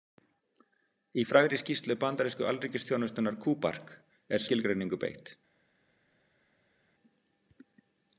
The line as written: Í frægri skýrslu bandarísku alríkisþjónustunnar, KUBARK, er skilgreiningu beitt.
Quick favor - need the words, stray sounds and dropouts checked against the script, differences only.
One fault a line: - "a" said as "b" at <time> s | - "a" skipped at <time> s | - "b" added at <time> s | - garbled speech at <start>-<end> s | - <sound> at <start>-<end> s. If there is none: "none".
none